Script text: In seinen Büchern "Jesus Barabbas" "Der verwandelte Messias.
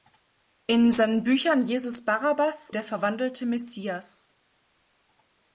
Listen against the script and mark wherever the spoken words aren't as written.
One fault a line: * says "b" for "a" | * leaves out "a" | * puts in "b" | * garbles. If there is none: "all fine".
all fine